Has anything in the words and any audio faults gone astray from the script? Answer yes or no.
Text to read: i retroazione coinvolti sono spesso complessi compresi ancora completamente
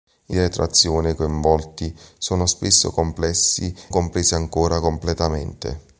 no